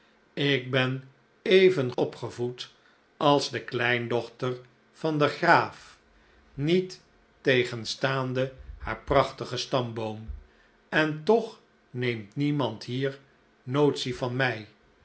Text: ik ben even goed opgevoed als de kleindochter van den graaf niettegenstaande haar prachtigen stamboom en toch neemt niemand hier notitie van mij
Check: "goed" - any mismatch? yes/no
yes